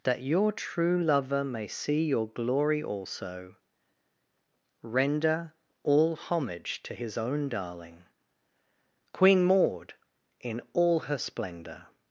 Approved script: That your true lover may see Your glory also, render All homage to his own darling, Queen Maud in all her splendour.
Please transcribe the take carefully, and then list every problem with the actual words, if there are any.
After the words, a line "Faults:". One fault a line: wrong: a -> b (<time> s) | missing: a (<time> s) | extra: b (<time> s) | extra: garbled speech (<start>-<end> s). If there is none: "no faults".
That your true lover may see Your glory also, render All homage to his own darling, Queen Maud in all her splendour.
Faults:
no faults